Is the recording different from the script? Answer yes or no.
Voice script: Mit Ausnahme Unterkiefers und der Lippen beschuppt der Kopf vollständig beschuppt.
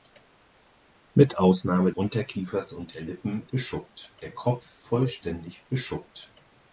no